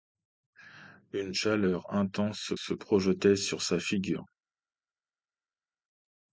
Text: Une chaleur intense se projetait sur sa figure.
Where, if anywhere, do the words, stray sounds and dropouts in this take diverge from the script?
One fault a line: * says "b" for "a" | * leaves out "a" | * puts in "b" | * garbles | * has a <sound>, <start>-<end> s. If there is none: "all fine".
* puts in "se"